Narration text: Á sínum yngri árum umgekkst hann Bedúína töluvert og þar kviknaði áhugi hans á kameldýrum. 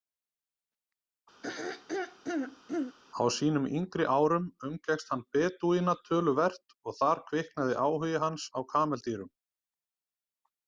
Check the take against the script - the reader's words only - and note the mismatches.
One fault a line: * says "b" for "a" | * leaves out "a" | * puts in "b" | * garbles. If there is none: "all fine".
all fine